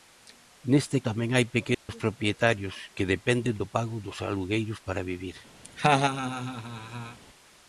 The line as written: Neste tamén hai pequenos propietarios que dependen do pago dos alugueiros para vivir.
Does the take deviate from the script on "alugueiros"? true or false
false